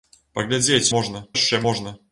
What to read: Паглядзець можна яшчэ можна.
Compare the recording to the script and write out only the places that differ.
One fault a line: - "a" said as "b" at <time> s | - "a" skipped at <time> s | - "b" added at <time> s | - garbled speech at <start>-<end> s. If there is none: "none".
none